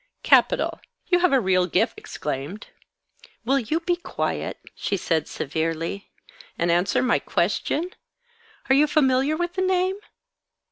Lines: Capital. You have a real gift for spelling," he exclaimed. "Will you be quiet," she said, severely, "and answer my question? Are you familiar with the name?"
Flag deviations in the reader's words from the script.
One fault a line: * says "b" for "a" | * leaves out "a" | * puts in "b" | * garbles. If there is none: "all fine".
* leaves out "for spelling he"